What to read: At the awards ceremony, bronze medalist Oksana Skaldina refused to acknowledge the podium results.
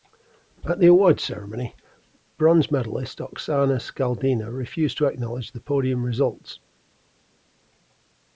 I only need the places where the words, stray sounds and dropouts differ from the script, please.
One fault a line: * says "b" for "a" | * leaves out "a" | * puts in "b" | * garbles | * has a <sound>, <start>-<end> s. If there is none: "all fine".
all fine